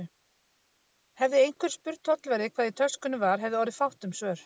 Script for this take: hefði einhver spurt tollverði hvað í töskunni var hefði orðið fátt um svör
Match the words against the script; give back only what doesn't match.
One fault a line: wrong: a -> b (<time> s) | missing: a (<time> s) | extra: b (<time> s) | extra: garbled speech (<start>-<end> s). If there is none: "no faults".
no faults